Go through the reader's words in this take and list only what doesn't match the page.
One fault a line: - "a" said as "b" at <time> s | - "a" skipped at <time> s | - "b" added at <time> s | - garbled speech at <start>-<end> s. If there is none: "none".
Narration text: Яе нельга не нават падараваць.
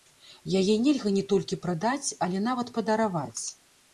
- "толькі прадаць але" added at 1.3 s